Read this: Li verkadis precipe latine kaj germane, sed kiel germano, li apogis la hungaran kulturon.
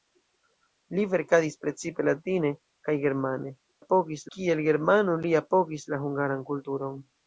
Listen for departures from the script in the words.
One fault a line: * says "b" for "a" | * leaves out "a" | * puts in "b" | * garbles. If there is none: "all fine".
* says "apogis" for "sed"